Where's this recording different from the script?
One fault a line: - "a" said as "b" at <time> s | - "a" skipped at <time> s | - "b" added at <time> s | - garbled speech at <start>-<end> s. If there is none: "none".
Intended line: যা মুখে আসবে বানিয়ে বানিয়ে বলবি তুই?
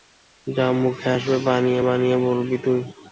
none